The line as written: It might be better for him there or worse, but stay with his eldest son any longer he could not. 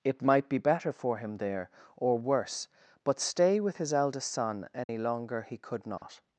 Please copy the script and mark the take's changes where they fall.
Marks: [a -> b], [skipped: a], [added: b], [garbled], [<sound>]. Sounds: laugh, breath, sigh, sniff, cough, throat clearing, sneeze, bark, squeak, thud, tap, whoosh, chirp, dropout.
It might be better for him there or worse, but stay with his eldest son any [dropout] longer he could not. [dropout]